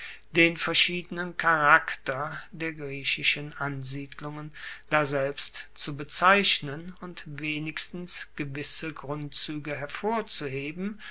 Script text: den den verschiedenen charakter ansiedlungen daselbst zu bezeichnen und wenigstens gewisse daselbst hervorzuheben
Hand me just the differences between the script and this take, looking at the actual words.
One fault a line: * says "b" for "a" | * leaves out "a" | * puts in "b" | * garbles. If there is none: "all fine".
* leaves out "den"
* puts in "der griechischen"
* says "grundzuege" for "daselbst"